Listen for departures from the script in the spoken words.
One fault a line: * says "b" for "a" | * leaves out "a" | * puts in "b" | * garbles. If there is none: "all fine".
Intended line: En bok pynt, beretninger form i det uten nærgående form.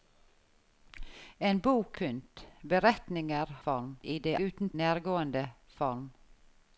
all fine